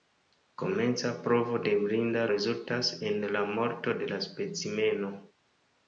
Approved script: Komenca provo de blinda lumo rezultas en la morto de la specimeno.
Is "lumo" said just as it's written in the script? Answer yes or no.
no